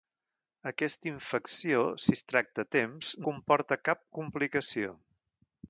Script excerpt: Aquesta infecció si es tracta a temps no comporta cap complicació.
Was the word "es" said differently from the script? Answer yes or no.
no